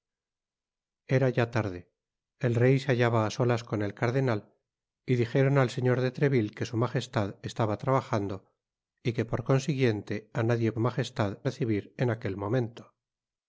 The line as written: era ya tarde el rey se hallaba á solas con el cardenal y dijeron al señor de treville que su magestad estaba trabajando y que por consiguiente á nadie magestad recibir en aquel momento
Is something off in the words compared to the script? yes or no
no